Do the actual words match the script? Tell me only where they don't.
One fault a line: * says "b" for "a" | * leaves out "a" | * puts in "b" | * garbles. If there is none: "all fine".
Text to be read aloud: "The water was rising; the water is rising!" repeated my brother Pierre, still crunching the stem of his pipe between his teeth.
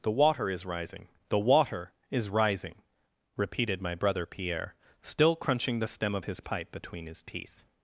* says "is" for "was"